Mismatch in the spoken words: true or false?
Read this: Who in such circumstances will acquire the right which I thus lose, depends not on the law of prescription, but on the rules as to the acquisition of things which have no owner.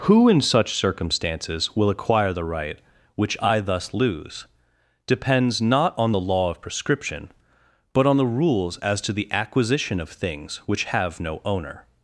false